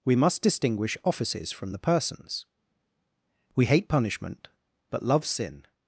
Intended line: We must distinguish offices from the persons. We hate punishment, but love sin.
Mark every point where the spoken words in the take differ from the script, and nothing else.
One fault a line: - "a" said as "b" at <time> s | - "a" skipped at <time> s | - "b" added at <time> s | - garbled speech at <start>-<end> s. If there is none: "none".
none